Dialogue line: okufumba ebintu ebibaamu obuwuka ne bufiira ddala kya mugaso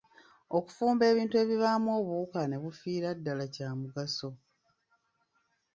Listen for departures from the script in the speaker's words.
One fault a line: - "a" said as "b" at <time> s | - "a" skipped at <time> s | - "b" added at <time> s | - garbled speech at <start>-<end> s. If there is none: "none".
none